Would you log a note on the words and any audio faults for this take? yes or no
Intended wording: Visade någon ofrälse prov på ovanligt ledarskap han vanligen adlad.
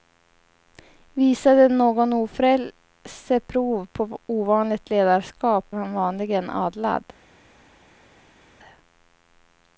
no